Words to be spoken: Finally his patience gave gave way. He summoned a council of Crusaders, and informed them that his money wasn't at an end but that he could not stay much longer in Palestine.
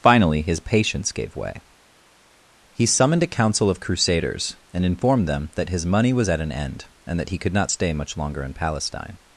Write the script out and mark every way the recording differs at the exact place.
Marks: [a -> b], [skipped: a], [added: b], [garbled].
Finally his patience gave [skipped: gave] way. He summoned a council of Crusaders, and informed them that his money [wasn't -> was] at an end [but -> and] that he could not stay much longer in Palestine.